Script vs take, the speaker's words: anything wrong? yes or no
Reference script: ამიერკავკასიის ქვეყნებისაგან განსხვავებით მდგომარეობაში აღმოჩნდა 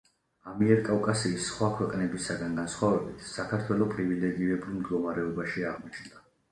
yes